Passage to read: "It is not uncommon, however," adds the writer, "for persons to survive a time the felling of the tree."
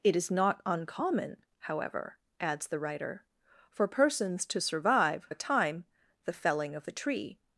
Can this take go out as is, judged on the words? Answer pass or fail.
pass